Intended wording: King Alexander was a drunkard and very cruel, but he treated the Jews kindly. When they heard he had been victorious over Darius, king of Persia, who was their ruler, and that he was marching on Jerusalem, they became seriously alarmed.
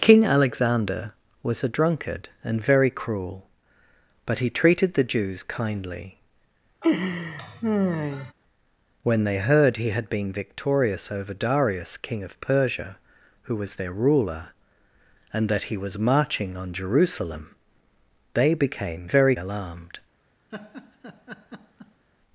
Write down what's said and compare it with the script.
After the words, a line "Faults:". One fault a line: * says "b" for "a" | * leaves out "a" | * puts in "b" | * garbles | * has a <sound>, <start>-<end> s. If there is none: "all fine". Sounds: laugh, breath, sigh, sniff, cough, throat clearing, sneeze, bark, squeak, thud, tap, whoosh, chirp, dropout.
King Alexander was a drunkard and very cruel, but he treated the Jews kindly. When they heard he had been victorious over Darius, king of Persia, who was their ruler, and that he was marching on Jerusalem, they became very alarmed.
Faults:
* has a laugh, 6.8-8.3 s
* says "very" for "seriously"
* has a laugh, 20.5-22.1 s